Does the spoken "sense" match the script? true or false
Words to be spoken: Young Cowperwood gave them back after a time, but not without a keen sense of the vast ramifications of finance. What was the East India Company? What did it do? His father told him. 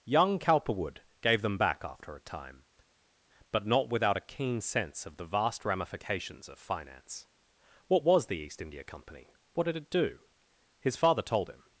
true